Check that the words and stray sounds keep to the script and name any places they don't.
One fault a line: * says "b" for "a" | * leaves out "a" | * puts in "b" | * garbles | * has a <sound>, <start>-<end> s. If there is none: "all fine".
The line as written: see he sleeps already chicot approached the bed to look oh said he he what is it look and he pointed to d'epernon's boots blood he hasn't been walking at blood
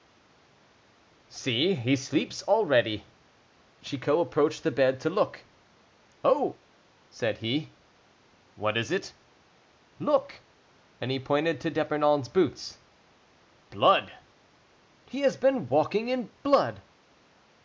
* leaves out "he"
* says "has" for "hasn't"
* says "in" for "at"